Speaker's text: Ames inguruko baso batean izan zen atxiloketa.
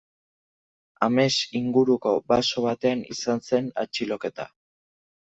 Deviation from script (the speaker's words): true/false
false